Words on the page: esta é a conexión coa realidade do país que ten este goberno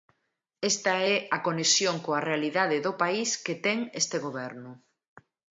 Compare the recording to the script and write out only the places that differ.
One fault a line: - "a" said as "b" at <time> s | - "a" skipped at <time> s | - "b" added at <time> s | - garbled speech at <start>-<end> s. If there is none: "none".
none